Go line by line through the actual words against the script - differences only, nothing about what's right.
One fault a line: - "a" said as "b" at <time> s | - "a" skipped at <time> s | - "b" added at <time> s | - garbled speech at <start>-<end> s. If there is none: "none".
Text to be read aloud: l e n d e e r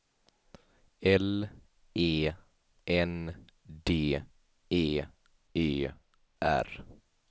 none